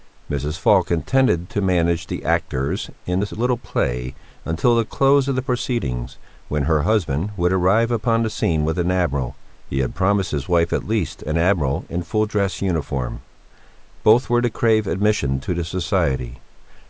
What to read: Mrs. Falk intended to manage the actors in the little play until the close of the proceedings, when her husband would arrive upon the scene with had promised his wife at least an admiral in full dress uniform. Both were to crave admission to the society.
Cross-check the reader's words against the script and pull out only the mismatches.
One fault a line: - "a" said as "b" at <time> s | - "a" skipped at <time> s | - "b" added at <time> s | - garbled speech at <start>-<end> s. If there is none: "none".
- "an admiral he" added at 8.8 s